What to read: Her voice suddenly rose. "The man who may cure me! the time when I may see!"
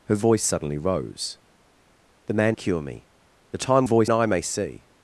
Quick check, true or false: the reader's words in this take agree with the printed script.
false